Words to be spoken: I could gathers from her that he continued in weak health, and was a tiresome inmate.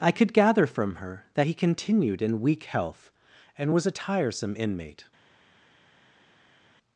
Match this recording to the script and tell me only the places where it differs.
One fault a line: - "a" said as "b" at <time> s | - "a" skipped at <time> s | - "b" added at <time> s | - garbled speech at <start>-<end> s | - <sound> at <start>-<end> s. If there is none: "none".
- "gathers" said as "gather" at 0.3 s